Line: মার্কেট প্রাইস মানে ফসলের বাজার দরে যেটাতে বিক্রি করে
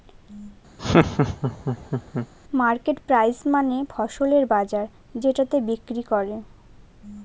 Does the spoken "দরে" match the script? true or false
false